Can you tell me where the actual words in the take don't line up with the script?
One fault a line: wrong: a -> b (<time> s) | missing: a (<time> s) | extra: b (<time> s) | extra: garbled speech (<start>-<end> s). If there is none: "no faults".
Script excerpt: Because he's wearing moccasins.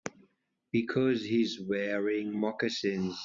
no faults